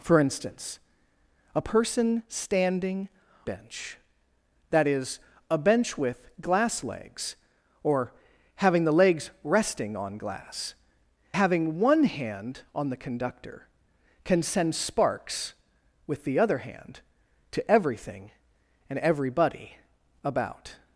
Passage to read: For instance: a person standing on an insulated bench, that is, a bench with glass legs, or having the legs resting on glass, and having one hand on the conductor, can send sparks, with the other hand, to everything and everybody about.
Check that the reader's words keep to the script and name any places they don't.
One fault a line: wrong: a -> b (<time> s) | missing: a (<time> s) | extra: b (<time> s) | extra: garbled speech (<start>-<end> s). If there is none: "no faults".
missing: on an insulated (3.1 s)
missing: and (10.8 s)